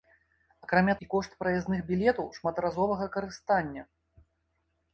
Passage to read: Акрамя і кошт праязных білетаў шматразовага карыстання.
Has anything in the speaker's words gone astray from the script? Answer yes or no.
no